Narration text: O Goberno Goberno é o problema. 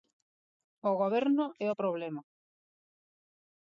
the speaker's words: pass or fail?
fail